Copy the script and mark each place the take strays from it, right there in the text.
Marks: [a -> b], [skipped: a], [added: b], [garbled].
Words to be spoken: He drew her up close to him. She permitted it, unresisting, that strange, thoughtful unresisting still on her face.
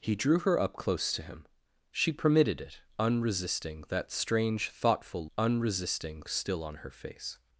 He drew her up close to him. She permitted it, unresisting, that strange, thoughtful unresisting still on her face.